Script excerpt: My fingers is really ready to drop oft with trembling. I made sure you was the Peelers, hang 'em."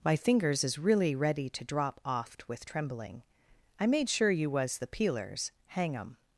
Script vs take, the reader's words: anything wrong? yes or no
no